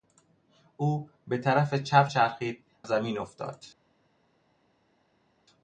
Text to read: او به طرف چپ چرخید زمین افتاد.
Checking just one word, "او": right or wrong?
right